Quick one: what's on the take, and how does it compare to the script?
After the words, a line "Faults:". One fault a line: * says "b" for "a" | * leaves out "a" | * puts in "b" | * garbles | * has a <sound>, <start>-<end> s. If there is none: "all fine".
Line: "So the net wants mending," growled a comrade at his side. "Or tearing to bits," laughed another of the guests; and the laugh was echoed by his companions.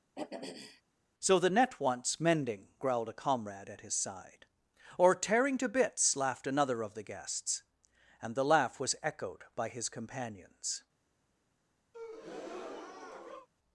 "So the net wants mending," growled a comrade at his side. "Or tearing to bits," laughed another of the guests; and the laugh was echoed by his companions.
Faults:
* has a throat clearing, 0.2-0.8 s
* has a breath, 11.9-13.5 s